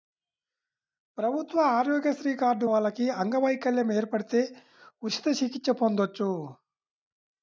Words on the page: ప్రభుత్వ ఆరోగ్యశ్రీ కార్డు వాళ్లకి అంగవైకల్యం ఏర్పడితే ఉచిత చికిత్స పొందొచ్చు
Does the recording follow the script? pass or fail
pass